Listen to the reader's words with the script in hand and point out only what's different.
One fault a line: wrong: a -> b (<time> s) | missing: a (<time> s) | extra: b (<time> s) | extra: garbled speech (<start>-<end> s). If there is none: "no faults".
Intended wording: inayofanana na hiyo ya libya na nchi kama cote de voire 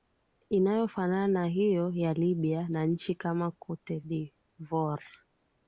no faults